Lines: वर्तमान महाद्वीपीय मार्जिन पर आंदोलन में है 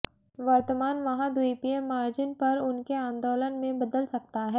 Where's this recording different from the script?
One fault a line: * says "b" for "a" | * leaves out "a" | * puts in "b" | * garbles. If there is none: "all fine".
* puts in "उनके"
* puts in "बदल सकता"